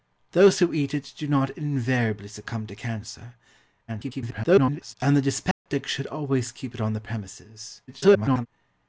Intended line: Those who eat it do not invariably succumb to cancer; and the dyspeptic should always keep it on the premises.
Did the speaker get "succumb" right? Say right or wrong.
right